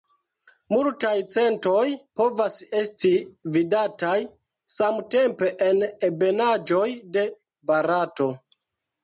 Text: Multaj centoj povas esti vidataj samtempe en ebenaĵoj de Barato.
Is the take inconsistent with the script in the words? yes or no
no